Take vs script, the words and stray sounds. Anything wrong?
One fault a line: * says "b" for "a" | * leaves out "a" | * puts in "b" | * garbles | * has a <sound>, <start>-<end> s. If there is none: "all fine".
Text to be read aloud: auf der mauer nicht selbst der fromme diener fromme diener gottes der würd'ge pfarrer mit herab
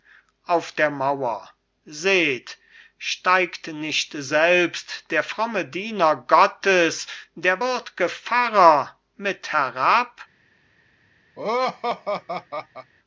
* puts in "seht steigt"
* leaves out "fromme diener"
* has a laugh, 11.4-12.9 s